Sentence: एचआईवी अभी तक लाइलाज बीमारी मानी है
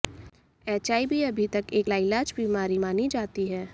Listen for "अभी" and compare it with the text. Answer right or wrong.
right